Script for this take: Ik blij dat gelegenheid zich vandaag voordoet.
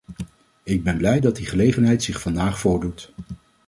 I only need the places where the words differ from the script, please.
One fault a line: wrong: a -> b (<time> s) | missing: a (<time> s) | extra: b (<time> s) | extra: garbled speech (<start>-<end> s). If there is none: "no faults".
extra: ben (0.8 s)
extra: die (1.4 s)